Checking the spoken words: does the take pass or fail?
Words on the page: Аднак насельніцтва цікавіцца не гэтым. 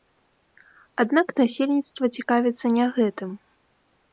pass